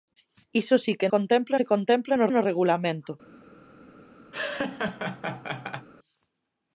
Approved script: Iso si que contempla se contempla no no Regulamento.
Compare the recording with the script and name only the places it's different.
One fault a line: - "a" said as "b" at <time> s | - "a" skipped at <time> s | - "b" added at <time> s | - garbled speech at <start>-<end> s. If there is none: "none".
none